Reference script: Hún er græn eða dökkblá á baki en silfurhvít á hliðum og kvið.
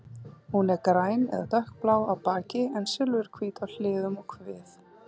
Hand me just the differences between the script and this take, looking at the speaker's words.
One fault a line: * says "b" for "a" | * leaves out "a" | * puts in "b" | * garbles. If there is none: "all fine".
all fine